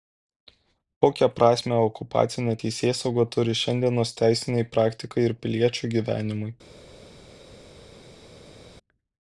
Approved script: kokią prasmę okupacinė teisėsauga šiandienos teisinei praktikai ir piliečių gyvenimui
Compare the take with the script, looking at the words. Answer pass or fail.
fail